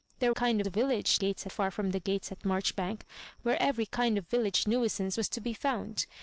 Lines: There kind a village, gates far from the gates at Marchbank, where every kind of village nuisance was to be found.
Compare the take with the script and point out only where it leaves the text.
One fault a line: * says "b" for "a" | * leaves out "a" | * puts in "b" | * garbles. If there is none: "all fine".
all fine